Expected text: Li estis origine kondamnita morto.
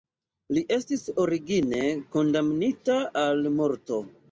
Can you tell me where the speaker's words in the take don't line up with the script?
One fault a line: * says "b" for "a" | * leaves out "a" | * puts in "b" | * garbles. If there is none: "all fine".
* puts in "al"